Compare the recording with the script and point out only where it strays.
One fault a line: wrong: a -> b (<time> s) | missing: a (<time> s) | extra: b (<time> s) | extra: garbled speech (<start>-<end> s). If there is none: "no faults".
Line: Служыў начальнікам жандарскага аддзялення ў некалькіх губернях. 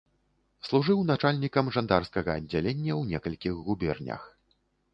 no faults